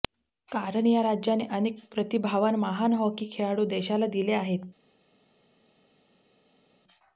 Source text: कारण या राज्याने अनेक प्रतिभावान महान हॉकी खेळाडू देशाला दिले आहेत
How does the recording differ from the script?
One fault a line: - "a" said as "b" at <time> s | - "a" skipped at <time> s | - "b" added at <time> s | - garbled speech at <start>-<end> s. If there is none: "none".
none